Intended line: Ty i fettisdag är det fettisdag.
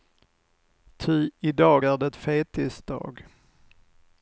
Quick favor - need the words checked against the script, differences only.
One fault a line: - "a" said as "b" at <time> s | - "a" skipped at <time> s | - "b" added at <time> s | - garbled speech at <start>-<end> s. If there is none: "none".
- "fettisdag" said as "dag" at 1.5 s